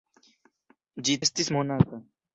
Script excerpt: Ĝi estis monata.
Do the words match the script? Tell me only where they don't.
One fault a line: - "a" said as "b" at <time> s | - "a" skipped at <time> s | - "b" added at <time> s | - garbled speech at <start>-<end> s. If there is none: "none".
none